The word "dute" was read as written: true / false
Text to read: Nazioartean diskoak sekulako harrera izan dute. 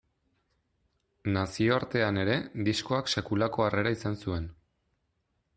false